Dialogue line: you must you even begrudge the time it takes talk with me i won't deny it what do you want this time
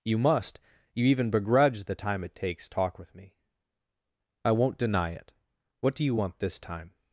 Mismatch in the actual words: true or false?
false